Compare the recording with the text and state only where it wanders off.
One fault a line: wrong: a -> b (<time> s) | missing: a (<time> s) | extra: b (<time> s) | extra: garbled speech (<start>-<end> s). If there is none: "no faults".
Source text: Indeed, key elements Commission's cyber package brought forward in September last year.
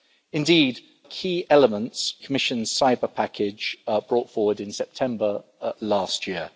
no faults